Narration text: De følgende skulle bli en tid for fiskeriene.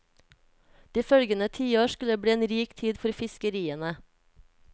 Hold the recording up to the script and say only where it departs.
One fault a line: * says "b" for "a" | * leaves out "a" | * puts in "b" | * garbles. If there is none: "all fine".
* puts in "tiår"
* puts in "rik"